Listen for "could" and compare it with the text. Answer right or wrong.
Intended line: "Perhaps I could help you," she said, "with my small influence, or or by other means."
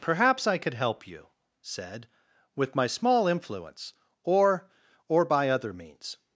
right